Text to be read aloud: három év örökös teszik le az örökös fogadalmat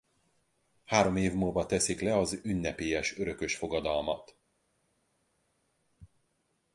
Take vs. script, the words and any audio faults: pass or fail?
fail